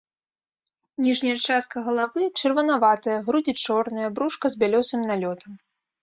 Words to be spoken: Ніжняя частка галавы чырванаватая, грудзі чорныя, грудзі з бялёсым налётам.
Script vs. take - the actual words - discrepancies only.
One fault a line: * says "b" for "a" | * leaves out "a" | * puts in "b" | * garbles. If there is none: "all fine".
* says "брушка" for "грудзі"